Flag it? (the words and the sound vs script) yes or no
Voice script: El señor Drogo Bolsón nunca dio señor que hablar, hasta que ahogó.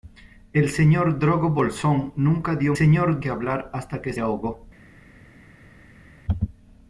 no